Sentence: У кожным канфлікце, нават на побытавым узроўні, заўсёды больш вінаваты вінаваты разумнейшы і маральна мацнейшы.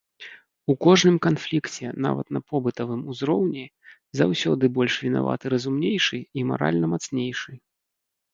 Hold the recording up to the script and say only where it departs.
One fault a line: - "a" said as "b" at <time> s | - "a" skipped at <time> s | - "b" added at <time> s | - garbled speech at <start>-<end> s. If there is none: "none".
- "вінаваты" skipped at 5.5 s